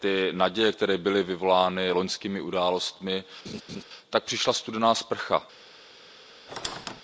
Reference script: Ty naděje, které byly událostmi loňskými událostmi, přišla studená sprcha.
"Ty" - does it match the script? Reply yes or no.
yes